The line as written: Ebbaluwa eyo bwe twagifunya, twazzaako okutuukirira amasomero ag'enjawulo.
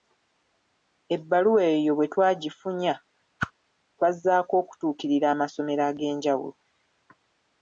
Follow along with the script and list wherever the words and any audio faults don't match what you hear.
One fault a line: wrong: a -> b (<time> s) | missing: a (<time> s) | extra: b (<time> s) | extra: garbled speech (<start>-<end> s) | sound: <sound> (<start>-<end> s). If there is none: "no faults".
sound: whoosh (3.4-3.5 s)